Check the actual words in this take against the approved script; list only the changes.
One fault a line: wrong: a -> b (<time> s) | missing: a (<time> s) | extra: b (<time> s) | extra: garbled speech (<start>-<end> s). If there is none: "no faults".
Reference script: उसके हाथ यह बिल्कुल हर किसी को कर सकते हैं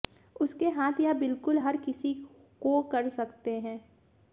no faults